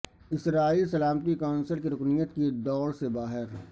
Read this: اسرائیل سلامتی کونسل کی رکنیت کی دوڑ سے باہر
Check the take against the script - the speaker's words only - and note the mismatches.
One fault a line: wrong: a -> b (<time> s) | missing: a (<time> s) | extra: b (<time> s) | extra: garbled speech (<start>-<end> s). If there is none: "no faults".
no faults